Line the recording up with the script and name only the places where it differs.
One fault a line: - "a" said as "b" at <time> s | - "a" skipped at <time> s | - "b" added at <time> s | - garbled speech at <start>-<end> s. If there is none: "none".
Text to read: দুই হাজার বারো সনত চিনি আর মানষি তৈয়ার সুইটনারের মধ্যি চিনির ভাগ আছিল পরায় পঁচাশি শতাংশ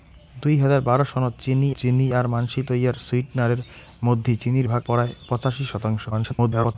- "চিনি" added at 1.8 s
- "আছিল" skipped at 4.8 s
- garbled speech at 6.1-6.8 s